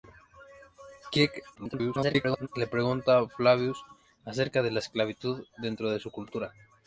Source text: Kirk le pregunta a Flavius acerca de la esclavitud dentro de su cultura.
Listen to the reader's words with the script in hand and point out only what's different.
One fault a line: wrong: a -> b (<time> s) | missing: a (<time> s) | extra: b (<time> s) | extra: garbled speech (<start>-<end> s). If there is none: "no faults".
extra: garbled speech (1.6-2.5 s)